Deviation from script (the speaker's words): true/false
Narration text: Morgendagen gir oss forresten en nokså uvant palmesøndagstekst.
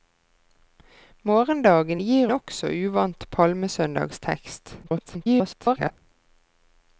true